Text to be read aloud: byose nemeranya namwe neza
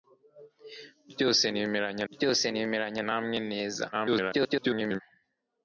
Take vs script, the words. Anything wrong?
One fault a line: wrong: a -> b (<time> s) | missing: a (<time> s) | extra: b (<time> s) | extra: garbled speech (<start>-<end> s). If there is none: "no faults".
extra: byose nemeranya (2.1 s)
extra: garbled speech (3.9-5.0 s)